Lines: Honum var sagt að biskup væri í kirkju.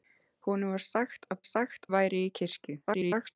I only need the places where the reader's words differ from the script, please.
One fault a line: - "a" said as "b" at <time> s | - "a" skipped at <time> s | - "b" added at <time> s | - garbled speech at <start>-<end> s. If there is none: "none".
- "biskup" said as "sagt" at 1.5 s
- garbled speech at 2.9-3.4 s